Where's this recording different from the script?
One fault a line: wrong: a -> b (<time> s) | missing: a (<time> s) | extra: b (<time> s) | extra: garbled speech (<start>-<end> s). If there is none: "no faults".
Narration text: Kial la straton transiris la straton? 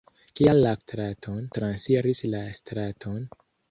no faults